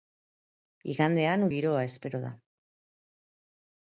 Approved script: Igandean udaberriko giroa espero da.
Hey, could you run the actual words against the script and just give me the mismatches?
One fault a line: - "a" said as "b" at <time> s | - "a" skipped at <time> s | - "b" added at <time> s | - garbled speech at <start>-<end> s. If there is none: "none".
- "udaberriko" skipped at 1.5 s